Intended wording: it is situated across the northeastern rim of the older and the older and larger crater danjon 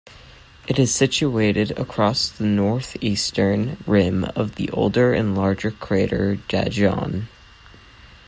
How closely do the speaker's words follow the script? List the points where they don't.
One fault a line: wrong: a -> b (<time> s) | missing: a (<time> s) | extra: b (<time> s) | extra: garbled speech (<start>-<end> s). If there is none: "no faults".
missing: the older and (5.4 s)